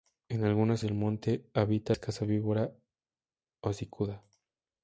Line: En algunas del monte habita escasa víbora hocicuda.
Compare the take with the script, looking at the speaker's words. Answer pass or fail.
pass